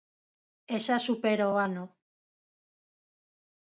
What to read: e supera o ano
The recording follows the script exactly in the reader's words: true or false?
false